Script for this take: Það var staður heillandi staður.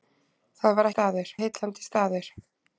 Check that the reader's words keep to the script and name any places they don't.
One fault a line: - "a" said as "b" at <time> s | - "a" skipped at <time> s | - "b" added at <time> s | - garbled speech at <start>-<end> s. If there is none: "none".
none